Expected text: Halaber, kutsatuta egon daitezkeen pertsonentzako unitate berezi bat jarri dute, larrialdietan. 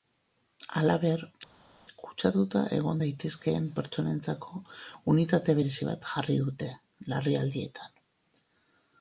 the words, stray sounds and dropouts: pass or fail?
pass